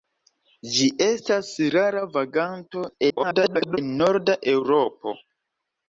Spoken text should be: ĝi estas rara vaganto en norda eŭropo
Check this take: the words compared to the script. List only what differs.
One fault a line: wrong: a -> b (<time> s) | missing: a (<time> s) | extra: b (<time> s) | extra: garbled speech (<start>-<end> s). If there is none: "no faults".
extra: garbled speech (3.1-3.8 s)